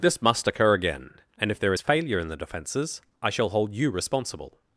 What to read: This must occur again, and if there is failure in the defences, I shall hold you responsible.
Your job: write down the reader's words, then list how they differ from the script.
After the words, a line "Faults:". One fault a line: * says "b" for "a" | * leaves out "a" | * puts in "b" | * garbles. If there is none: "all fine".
This must occur again, and if there is failure in the defences, I shall hold you responsible.
Faults:
all fine